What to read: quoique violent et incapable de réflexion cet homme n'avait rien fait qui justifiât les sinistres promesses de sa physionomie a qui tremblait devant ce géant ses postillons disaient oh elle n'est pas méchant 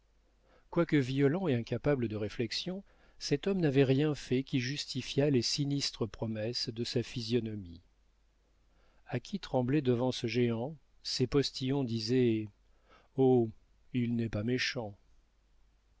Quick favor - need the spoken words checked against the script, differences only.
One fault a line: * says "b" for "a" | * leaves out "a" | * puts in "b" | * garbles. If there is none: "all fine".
* says "il" for "elle"